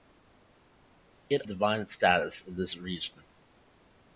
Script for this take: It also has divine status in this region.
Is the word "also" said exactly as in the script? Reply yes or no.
no